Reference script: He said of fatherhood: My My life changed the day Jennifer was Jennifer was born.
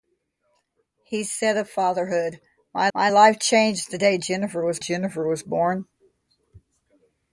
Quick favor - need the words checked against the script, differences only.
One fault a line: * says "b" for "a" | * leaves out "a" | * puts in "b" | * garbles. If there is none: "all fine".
all fine